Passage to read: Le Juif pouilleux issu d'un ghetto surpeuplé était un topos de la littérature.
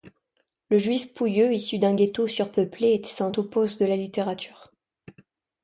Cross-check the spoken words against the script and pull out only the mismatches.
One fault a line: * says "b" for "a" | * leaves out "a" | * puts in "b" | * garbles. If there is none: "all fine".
all fine